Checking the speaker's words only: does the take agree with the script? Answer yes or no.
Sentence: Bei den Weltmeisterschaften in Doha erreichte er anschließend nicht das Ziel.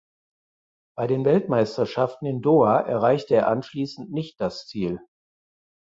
yes